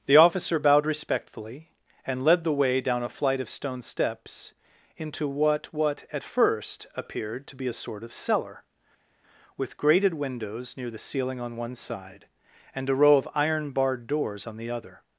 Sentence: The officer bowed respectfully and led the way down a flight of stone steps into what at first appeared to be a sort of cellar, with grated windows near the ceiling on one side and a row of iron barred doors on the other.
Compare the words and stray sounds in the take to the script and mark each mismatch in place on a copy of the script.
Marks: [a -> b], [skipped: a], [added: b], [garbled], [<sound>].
The officer bowed respectfully and led the way down a flight of stone steps into what [added: what] at first appeared to be a sort of cellar, with grated windows near the ceiling on one side and a row of iron barred doors on the other.